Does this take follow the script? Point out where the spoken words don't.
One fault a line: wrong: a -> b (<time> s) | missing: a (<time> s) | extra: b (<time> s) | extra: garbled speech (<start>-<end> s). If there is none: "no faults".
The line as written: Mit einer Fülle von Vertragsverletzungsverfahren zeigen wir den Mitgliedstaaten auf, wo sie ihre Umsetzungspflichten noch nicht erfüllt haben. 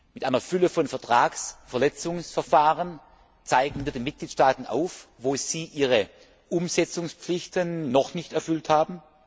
no faults